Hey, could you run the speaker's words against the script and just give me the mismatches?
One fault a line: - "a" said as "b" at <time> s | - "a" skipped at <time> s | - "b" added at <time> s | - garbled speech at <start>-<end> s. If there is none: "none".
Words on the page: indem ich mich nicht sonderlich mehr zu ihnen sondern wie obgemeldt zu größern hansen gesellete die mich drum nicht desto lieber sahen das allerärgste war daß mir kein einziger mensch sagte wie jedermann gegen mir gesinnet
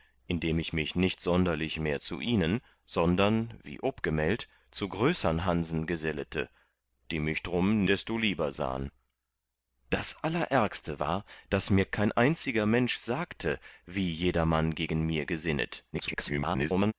- "nicht" skipped at 7.8 s
- garbled speech at 15.9-16.9 s